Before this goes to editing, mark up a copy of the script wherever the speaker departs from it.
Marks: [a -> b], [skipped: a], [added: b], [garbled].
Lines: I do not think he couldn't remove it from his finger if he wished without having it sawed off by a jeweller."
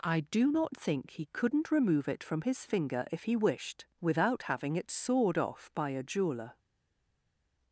I do not think he couldn't remove it from his finger if he wished without having it sawed off by a jeweller."